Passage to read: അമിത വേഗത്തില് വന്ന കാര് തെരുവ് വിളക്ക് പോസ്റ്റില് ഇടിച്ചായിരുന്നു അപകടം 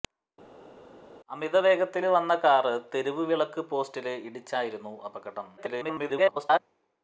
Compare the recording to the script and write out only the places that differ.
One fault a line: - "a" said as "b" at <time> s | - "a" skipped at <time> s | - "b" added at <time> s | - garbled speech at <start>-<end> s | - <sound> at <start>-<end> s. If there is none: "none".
- garbled speech at 5.6-6.6 s